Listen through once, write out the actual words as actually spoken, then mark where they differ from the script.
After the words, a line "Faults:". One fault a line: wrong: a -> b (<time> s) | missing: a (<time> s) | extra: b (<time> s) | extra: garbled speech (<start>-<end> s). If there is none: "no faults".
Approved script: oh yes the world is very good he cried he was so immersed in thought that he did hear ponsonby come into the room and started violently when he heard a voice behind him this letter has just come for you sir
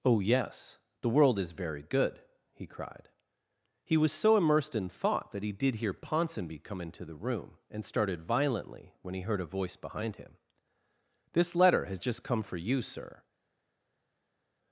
oh yes the world is very good he cried he was so immersed in thought that he did hear ponsonby come into the room and started violently when he heard a voice behind him this letter has just come for you sir
Faults:
no faults